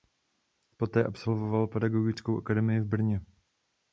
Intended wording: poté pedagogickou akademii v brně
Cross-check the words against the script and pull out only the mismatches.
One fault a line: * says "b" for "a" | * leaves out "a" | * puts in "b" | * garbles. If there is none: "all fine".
* puts in "absolvoval"